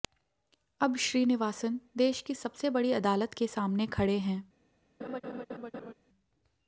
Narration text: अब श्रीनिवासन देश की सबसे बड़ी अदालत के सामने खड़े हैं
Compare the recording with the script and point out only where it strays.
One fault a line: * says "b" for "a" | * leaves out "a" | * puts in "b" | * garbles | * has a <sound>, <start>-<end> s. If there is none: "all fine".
* has a laugh, 5.0-5.9 s